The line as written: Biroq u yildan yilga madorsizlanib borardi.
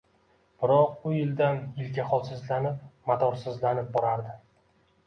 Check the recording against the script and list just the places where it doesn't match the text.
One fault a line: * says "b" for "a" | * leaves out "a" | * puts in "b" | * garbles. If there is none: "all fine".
* puts in "holsizlanib"